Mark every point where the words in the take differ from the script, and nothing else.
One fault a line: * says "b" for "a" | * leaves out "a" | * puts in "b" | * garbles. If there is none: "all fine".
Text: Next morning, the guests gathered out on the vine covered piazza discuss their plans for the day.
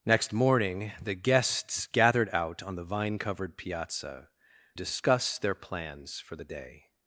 all fine